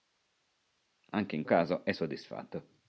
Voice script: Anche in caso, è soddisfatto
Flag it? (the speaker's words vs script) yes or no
no